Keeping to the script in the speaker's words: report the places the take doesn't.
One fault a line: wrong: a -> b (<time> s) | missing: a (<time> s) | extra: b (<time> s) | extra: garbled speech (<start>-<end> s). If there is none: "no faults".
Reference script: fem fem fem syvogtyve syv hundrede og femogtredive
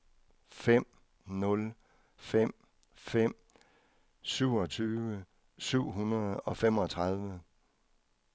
extra: nul (1.2 s)